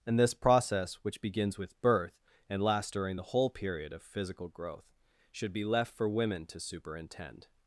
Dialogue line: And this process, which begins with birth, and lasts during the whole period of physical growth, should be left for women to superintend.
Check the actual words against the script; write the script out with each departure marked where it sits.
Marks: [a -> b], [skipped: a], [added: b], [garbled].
And this process, which begins with birth, and lasts during the whole period of physical growth, should be left for women to superintend.